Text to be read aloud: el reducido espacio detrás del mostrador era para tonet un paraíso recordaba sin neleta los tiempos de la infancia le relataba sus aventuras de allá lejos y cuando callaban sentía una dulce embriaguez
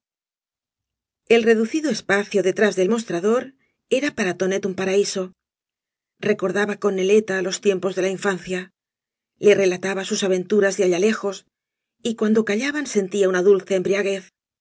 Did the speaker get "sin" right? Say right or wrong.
wrong